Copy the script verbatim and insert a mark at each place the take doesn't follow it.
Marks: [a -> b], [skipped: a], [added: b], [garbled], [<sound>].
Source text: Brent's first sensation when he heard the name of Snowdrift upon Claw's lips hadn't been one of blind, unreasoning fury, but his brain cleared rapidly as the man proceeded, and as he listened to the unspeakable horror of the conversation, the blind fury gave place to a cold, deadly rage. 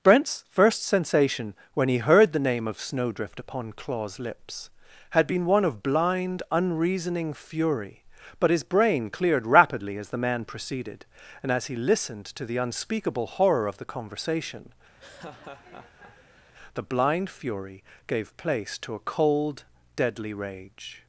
Brent's first sensation when he heard the name of Snowdrift upon Claw's lips [hadn't -> had] been one of blind, unreasoning fury, but his brain cleared rapidly as the man proceeded, and as he listened to the unspeakable horror of the conversation, [laugh] the blind fury gave place to a cold, deadly rage.